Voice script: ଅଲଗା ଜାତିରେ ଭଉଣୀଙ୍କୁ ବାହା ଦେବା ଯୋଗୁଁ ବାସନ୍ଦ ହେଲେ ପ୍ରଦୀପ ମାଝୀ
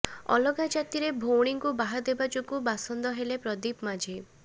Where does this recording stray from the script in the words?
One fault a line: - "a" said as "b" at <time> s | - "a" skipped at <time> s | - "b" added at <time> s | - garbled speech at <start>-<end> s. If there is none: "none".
none